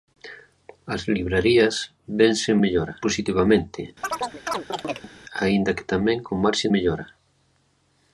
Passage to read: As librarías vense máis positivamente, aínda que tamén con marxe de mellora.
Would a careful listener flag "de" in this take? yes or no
yes